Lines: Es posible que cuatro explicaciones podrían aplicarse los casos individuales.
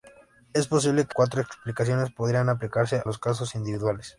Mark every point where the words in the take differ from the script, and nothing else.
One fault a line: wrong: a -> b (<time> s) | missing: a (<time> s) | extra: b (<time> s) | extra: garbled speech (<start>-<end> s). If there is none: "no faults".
no faults